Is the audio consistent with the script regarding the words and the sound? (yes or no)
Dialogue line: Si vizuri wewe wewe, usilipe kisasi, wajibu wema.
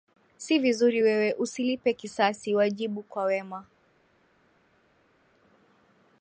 no